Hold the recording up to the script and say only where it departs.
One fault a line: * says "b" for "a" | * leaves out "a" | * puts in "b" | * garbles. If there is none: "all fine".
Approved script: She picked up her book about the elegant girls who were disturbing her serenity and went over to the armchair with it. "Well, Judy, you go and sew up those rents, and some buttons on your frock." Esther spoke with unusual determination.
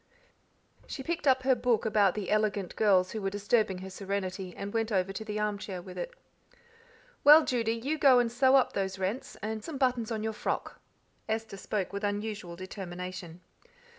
all fine